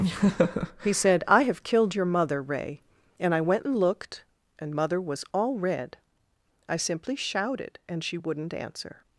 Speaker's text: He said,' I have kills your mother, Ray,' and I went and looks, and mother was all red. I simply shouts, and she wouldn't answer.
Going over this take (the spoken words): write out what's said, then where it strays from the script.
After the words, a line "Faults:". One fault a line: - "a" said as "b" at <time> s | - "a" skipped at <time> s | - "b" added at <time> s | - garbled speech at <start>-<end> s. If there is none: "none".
He said,' I have killed your mother, Ray,' and I went and looked, and mother was all red. I simply shouted, and she wouldn't answer.
Faults:
- "kills" said as "killed" at 1.6 s
- "looks" said as "looked" at 3.8 s
- "shouts" said as "shouted" at 7.2 s